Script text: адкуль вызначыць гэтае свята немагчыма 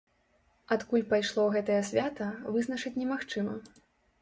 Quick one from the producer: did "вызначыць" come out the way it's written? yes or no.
no